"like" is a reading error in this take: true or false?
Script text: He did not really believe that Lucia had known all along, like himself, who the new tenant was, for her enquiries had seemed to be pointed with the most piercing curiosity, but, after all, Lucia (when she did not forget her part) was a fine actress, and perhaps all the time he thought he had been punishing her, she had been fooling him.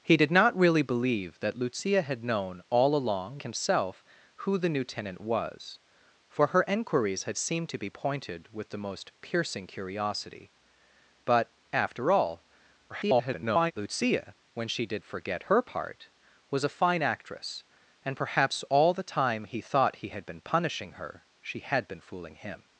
true